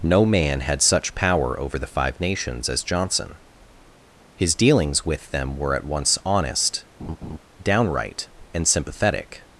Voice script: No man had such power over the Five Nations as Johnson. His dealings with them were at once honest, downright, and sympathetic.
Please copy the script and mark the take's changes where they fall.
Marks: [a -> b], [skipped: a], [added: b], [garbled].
No man had such power over the Five Nations as Johnson. His dealings with them were at once honest, downright, and sympathetic.